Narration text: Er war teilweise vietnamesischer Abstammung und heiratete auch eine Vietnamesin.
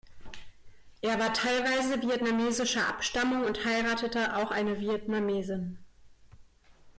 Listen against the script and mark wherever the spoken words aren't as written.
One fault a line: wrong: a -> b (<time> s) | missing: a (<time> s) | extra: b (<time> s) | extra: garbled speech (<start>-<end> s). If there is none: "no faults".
no faults